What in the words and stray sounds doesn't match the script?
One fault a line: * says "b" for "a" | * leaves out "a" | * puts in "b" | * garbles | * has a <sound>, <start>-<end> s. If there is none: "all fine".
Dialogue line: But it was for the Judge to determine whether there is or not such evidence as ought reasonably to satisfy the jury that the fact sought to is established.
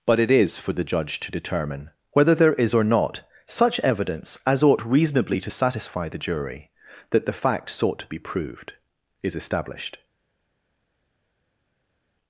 * says "is" for "was"
* puts in "be proved"